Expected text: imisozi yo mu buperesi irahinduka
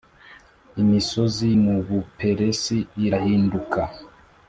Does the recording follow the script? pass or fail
fail